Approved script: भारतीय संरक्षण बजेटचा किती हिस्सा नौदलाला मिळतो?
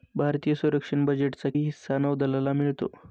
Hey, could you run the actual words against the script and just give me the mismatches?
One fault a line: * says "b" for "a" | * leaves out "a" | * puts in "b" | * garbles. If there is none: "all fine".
* leaves out "किती"